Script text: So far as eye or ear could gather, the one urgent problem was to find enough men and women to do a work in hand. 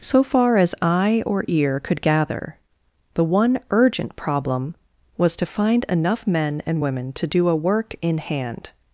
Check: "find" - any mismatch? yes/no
no